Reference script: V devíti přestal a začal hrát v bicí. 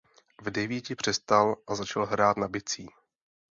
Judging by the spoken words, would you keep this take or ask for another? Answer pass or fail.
fail